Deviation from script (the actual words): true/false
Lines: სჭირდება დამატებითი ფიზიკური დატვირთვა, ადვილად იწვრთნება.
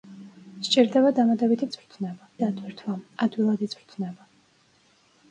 true